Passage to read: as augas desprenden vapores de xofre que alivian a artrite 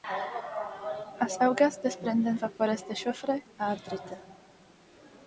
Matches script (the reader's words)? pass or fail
fail